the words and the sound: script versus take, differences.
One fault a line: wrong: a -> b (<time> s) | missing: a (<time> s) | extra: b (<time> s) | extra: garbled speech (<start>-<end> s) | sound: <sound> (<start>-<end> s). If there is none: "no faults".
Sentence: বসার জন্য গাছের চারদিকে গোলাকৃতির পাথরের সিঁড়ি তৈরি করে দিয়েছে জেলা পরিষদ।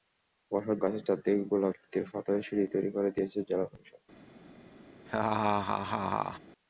missing: জন্য (0.8 s)
sound: laugh (5.1-6.4 s)